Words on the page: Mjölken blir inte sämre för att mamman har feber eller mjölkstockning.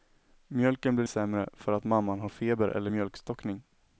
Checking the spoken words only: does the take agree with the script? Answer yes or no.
no